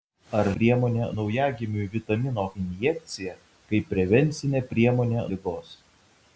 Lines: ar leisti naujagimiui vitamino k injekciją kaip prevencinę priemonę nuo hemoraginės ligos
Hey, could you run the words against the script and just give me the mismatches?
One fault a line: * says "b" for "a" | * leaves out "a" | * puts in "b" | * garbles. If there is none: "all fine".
* says "priemonę" for "leisti"
* leaves out "k"
* leaves out "nuo hemoraginės"